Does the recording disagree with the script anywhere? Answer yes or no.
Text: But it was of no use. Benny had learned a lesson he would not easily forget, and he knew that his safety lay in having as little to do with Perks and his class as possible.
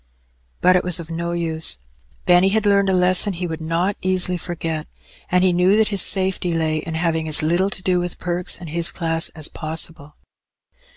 no